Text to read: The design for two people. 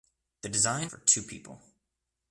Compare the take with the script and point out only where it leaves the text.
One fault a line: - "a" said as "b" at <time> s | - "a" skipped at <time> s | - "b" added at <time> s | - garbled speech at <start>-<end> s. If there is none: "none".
none